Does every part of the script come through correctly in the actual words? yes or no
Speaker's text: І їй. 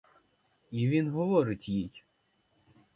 no